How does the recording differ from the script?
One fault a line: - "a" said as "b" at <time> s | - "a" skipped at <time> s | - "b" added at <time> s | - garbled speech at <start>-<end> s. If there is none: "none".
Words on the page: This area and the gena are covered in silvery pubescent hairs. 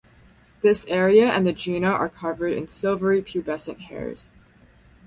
none